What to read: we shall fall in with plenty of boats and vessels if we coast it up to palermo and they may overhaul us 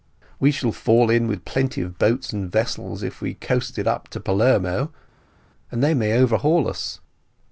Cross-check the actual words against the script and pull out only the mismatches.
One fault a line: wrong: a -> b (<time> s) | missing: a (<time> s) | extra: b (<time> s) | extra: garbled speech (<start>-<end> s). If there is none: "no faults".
no faults